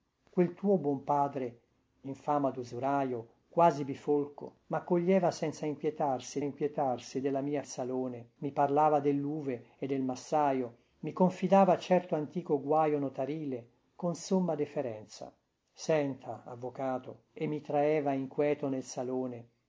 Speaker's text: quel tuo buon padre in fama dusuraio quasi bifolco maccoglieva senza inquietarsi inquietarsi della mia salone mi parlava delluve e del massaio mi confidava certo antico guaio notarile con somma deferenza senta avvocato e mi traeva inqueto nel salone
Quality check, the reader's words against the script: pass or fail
pass